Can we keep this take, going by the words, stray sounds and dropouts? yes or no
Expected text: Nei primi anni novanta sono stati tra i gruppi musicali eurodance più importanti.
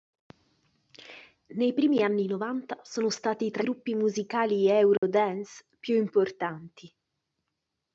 no